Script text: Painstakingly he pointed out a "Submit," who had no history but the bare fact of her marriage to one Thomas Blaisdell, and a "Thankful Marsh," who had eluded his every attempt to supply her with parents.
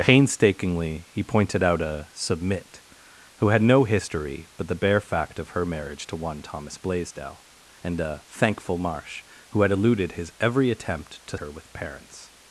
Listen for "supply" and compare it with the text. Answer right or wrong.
wrong